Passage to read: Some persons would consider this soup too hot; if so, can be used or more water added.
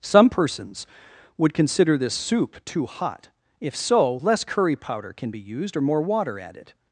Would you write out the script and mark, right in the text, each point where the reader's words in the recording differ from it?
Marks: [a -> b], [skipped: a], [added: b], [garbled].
Some persons would consider this soup too hot; if so, [added: less curry powder] can be used or more water added.